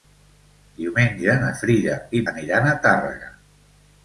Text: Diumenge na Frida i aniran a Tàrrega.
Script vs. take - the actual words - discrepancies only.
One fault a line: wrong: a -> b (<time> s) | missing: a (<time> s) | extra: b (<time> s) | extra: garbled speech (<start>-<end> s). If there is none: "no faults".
no faults